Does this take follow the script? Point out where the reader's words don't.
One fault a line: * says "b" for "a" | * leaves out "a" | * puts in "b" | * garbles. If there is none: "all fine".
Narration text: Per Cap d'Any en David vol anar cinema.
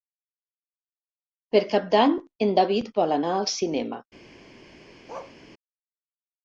* puts in "al"